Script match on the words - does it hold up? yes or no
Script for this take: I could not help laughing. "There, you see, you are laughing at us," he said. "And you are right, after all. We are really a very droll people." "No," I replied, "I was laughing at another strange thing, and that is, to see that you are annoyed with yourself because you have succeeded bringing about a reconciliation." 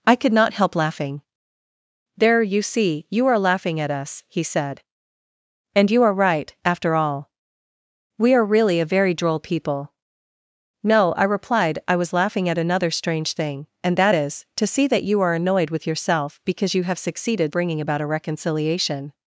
yes